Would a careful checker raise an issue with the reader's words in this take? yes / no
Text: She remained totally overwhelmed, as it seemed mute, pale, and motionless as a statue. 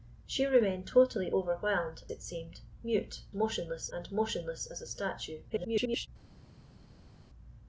yes